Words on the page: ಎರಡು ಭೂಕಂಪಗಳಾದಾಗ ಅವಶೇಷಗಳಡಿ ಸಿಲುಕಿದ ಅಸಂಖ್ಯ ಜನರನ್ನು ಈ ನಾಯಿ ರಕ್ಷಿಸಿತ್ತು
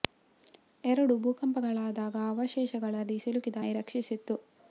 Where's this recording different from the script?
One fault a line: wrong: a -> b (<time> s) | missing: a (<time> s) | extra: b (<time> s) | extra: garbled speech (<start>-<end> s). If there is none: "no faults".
missing: ಅಸಂಖ್ಯ ಜನರನ್ನು ಈ (3.6 s)